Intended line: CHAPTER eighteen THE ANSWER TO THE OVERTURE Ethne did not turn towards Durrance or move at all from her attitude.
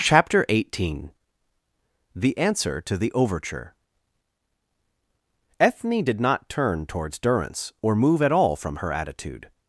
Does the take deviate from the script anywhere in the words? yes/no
no